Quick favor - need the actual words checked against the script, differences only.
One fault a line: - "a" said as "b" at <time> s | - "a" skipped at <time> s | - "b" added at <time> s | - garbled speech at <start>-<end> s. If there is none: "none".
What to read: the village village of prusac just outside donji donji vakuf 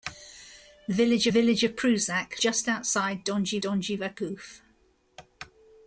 none